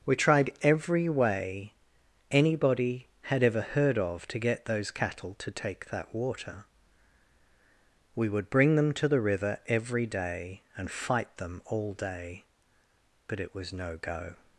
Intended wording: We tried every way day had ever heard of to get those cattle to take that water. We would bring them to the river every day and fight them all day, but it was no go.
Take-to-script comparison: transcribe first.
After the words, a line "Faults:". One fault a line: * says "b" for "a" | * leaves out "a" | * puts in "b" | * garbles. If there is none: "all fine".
We tried every way anybody had ever heard of to get those cattle to take that water. We would bring them to the river every day and fight them all day, but it was no go.
Faults:
* says "anybody" for "day"